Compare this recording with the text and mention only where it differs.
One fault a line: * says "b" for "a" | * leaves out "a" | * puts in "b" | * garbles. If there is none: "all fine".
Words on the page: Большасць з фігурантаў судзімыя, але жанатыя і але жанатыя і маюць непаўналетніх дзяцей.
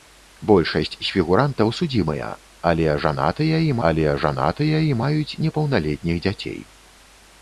all fine